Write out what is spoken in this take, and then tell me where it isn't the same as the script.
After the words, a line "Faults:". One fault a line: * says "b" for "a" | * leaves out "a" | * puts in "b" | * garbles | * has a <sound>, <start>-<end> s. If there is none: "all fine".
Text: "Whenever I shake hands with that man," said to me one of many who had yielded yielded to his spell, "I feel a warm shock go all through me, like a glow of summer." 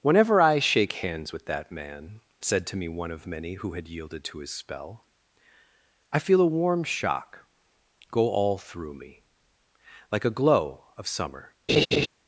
"Whenever I shake hands with that man," said to me one of many who had yielded to his spell, "I feel a warm shock go all through me, like a glow of summer."
Faults:
* leaves out "yielded"
* has a laugh, 11.7-12.1 s